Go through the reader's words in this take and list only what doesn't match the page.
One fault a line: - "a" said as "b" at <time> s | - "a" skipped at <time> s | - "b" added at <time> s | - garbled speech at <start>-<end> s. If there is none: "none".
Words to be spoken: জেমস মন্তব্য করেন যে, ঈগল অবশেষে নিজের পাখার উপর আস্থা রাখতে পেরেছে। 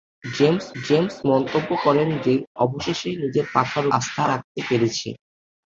- "জেমস" added at 0.8 s
- "ঈগল" skipped at 2.3 s
- "উপর" skipped at 3.8 s